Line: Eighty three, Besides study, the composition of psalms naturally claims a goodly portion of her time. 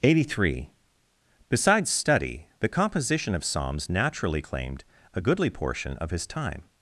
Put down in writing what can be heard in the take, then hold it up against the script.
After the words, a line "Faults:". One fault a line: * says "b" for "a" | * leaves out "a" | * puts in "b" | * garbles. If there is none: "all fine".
Eighty three, Besides study, the composition of psalms naturally claimed a goodly portion of his time.
Faults:
* says "claimed" for "claims"
* says "his" for "her"